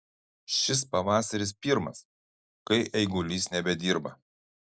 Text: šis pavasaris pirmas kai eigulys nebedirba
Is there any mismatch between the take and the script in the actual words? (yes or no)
no